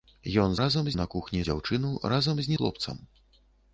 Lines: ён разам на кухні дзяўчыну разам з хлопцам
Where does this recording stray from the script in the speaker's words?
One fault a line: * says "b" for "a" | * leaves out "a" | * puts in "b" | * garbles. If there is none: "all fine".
all fine